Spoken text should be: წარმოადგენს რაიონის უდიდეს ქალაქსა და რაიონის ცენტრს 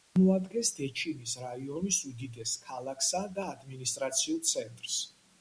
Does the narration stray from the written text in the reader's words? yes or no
yes